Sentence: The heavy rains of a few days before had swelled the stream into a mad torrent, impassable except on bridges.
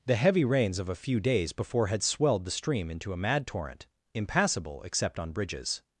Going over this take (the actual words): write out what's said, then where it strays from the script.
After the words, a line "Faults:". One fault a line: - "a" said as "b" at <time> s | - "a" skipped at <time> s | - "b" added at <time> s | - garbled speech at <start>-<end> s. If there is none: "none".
The heavy rains of a few days before had swelled the stream into a mad torrent, impassable except on bridges.
Faults:
none